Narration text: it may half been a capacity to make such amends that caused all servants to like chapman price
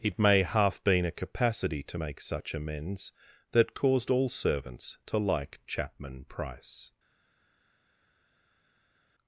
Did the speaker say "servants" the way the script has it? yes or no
yes